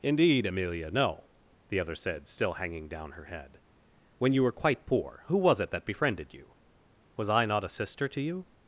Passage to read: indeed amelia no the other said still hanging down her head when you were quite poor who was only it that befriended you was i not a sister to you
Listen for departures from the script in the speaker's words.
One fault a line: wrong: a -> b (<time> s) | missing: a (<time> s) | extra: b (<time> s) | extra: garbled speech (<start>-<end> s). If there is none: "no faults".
missing: only (5.6 s)